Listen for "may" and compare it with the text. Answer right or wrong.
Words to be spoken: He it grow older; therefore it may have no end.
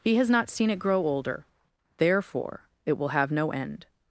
wrong